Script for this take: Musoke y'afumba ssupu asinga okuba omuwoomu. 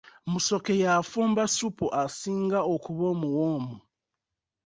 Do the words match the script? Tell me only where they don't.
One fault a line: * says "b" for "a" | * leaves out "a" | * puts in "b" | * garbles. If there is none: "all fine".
all fine